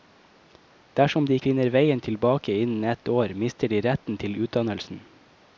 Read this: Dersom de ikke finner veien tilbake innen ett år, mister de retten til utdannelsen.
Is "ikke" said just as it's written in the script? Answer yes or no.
no